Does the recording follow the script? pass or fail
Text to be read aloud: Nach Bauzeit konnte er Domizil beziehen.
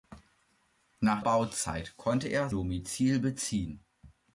pass